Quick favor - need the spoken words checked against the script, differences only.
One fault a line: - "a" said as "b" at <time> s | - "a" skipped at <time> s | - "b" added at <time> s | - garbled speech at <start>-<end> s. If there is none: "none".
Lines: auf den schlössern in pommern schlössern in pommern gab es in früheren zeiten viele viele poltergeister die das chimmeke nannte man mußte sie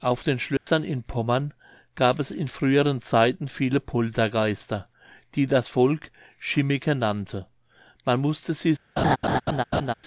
- "schlössern in pommern" skipped at 1.5 s
- "viele" skipped at 3.8 s
- "volk" added at 5.7 s